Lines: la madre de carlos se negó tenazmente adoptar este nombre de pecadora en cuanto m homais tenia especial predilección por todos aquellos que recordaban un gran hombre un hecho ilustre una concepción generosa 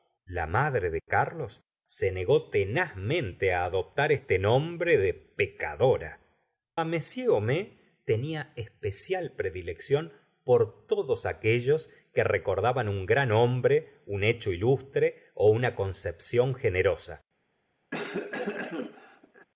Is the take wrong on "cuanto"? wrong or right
wrong